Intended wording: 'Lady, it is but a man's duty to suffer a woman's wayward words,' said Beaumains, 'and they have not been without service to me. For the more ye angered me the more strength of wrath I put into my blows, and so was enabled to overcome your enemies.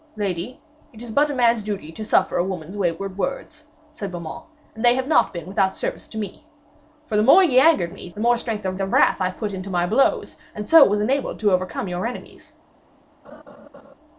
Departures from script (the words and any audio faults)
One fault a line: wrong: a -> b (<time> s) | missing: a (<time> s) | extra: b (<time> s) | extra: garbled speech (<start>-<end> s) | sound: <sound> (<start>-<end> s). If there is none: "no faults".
extra: of (8.8 s)
sound: laugh (13.2-13.9 s)